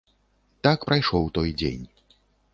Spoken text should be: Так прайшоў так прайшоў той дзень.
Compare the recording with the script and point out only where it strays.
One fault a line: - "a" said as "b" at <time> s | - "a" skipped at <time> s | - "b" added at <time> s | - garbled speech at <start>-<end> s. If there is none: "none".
- "так прайшоў" skipped at 1.3 s